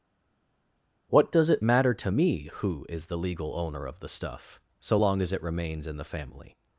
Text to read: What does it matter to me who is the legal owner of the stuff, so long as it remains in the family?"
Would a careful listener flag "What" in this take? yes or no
no